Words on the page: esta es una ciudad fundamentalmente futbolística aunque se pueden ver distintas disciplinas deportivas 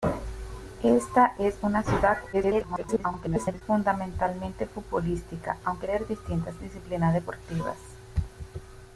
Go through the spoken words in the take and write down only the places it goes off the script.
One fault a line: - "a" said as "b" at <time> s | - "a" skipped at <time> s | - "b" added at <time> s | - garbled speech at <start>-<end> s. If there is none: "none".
- garbled speech at 2.3-3.6 s
- "se pueden" skipped at 5.9 s